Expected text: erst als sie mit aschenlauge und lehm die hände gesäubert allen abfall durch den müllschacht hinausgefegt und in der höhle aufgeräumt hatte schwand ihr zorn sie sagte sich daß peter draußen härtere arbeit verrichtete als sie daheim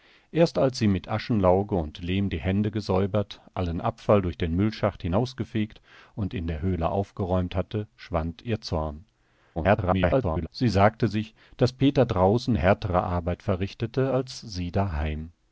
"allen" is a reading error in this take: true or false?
false